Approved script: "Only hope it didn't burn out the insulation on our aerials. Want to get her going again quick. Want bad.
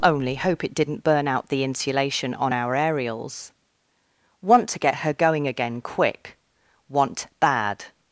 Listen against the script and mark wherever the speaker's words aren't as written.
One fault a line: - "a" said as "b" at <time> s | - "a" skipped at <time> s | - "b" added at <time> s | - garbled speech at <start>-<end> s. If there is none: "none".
none